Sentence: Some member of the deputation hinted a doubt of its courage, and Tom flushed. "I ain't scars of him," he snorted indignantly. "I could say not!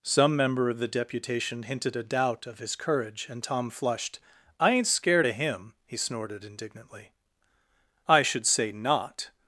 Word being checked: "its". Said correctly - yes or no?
no